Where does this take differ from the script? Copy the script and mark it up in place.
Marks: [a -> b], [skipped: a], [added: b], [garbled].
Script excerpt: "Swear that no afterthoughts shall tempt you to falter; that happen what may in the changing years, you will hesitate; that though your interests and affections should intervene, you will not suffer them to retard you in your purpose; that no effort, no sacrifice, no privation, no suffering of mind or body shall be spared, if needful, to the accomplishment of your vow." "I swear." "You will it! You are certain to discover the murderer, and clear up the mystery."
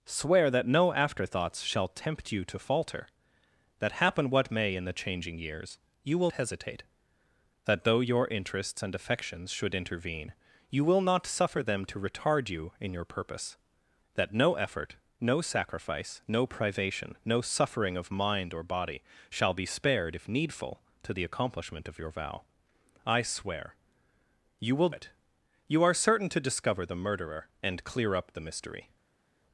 "Swear that no afterthoughts shall tempt you to falter; that happen what may in the changing years, you will hesitate; that though your interests and affections should intervene, you will not suffer them to retard you in your purpose; that no effort, no sacrifice, no privation, no suffering of mind or body shall be spared, if needful, to the accomplishment of your vow." "I swear." "You will it! You are certain to discover the murderer, and clear up the mystery."